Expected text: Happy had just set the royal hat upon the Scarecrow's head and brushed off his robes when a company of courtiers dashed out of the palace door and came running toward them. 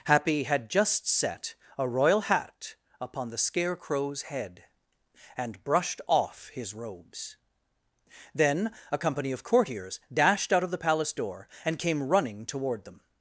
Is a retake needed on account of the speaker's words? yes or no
yes